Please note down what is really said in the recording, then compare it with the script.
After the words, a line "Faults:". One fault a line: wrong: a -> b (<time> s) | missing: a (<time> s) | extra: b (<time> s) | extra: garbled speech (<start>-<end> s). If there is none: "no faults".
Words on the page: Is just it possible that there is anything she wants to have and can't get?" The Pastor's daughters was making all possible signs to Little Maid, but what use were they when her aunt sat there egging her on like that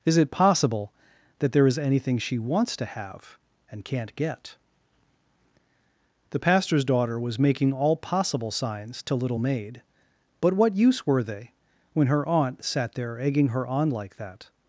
Is it possible that there is anything she wants to have and can't get?" The Pastor's daughter was making all possible signs to Little Maid, but what use were they when her aunt sat there egging her on like that
Faults:
missing: just (0.2 s)
wrong: daughters -> daughter (6.8 s)